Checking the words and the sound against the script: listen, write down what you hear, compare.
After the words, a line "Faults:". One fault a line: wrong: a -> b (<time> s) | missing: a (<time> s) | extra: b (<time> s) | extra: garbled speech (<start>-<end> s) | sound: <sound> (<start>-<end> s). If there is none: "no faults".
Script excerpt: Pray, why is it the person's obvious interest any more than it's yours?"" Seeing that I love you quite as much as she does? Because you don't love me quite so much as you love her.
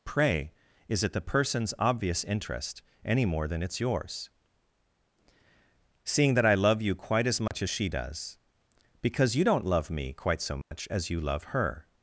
Pray, is it the person's obvious interest any more than it's yours?"" Seeing that I love you quite as much as she does? Because you don't love me quite so much as you love her.
Faults:
missing: why (0.5 s)
sound: dropout (7.5-7.5 s)
sound: dropout (10.6-10.7 s)